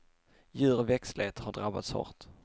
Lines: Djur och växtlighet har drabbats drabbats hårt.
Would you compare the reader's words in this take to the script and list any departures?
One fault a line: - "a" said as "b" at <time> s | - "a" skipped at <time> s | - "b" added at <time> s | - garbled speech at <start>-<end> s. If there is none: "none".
- "drabbats" skipped at 1.9 s